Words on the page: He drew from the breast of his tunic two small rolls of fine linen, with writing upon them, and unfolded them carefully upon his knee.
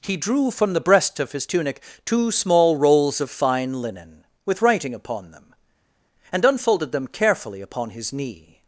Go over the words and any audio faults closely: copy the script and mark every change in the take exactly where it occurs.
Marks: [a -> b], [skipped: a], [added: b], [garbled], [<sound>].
He drew from the breast of his tunic two small rolls of fine linen, with writing upon them, and unfolded them carefully upon his knee.